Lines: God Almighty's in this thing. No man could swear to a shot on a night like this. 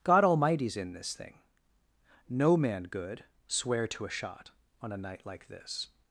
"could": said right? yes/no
no